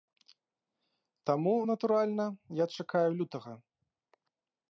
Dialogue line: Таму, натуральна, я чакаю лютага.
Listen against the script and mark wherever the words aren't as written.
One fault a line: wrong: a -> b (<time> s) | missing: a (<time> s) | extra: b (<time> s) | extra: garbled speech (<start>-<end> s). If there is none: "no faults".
no faults